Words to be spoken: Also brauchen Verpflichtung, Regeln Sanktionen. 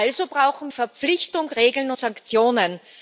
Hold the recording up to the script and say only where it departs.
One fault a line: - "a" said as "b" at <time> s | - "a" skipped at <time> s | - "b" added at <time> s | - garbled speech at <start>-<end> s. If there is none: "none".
none